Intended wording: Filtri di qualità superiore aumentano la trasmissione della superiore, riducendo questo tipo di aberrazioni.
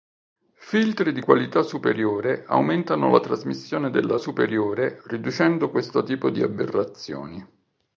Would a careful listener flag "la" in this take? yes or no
no